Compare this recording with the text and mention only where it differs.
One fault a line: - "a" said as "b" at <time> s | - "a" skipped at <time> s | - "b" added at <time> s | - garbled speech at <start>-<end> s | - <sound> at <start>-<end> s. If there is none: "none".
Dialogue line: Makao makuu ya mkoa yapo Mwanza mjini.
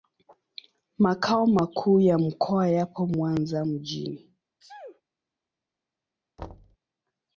- sneeze at 4.6-5.0 s
- thud at 6.4-6.8 s